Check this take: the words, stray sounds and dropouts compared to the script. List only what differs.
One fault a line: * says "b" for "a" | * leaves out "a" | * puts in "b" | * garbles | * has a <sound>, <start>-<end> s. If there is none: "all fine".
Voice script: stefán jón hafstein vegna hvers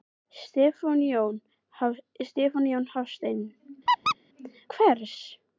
* leaves out "vegna"
* has a squeak, 3.9-4.2 s